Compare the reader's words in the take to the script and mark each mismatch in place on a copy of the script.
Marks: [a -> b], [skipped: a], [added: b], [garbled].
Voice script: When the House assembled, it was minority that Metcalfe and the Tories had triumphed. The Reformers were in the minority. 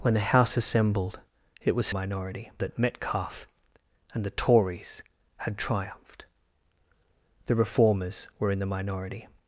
When the House assembled, it was minority that Metcalfe and the Tories had triumphed. The Reformers were in the minority.